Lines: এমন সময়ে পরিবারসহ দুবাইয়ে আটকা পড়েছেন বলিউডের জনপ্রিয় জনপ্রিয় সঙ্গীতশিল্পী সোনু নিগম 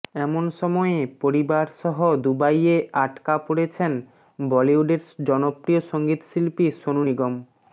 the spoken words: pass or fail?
fail